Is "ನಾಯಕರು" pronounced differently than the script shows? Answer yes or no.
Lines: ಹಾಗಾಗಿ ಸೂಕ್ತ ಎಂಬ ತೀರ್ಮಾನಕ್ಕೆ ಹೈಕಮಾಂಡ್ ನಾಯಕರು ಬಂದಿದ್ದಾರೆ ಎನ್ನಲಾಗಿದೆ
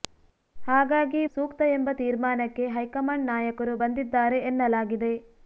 no